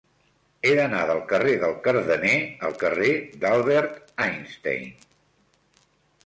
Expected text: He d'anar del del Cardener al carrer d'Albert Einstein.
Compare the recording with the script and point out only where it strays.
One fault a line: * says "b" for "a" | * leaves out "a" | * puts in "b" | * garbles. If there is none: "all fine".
* puts in "carrer"